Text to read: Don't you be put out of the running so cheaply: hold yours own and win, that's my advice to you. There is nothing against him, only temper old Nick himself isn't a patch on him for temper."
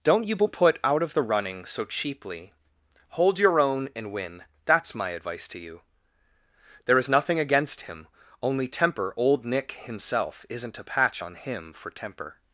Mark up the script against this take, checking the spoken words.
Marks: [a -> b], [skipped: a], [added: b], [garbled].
Don't you be put out of the running so cheaply: hold [yours -> your] own and win, that's my advice to you. There is nothing against him, only temper old Nick himself isn't a patch on him for temper."